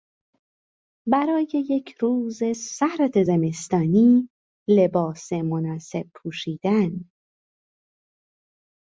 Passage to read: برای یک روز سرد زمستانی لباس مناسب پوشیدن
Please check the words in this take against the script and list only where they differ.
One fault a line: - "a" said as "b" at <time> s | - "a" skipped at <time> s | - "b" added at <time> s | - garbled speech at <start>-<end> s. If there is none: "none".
none